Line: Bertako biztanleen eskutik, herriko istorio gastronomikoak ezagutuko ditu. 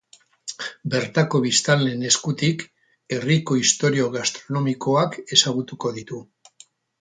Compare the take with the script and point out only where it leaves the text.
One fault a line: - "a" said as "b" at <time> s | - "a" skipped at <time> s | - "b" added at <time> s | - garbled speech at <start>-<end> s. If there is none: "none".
none